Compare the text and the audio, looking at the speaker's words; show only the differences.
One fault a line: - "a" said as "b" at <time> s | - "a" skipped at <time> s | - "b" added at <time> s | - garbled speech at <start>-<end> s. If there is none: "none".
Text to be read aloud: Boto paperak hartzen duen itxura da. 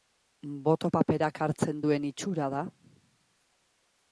none